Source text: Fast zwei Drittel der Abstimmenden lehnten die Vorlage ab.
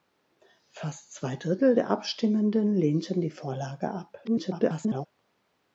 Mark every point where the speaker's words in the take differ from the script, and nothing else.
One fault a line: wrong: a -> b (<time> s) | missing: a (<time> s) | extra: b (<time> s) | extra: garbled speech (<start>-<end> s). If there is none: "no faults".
extra: garbled speech (4.2-5.1 s)